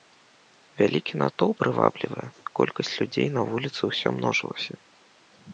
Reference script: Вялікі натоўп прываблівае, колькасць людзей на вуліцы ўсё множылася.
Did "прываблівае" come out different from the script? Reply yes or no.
no